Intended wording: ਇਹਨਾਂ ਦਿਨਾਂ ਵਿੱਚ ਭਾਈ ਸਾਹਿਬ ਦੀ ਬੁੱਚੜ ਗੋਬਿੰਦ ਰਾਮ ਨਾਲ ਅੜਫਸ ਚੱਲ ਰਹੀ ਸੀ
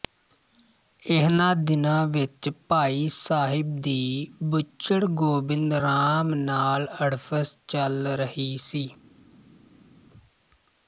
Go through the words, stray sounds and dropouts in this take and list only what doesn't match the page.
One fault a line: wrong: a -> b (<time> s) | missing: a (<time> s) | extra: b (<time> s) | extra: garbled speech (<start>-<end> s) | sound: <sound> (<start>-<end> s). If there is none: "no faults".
no faults